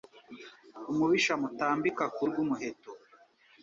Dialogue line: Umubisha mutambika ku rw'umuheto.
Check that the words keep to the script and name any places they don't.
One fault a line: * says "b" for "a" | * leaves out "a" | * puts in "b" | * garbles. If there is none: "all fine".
all fine